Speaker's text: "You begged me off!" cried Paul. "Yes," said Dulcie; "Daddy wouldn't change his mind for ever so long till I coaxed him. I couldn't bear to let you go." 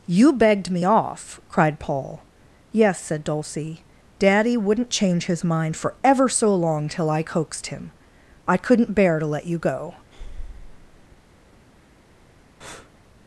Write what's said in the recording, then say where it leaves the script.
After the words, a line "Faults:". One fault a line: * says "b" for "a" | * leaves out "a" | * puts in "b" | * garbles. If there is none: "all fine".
"You begged me off!" cried Paul. "Yes," said Dulcie; "Daddy wouldn't change his mind for ever so long till I coaxed him. I couldn't bear to let you go."
Faults:
all fine